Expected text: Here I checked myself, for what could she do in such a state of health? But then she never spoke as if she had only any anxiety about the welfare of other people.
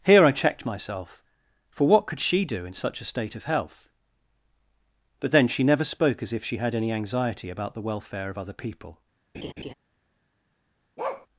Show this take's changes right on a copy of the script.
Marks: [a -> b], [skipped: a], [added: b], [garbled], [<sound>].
Here I checked myself, for what could she do in such a state of health? But then she never spoke as if she had [skipped: only] any anxiety about the welfare of other people. [laugh] [bark]